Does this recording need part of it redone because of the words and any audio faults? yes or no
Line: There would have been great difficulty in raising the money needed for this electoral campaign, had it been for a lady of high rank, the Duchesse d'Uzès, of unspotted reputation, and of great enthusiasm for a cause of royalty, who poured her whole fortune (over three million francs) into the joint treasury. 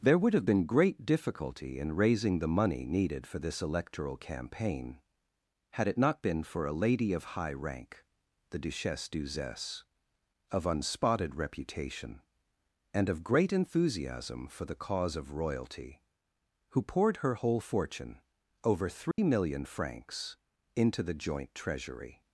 yes